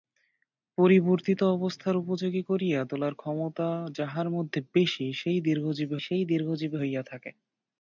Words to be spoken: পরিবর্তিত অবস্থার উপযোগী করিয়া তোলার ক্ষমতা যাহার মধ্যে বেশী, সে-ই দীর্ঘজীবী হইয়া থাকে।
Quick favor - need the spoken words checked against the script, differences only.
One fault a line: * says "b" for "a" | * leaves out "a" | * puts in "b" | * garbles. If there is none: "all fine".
* puts in "সে-ই দীর্ঘজীবী"